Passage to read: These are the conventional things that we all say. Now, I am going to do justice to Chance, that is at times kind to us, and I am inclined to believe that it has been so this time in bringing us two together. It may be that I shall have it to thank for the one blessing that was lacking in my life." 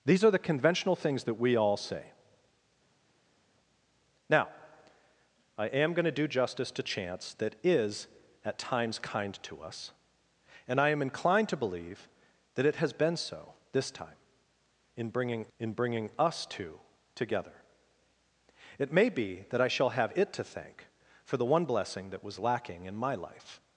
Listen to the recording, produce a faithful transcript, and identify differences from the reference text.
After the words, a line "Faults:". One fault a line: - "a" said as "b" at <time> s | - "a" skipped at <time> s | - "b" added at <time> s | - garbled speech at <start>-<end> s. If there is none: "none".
These are the conventional things that we all say. Now, I am going to do justice to Chance, that is at times kind to us, and I am inclined to believe that it has been so this time in bringing in bringing us two together. It may be that I shall have it to thank for the one blessing that was lacking in my life."
Faults:
- "in bringing" added at 15.6 s